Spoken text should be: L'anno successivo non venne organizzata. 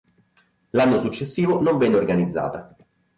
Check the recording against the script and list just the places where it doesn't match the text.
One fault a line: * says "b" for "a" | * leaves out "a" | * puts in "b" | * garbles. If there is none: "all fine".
all fine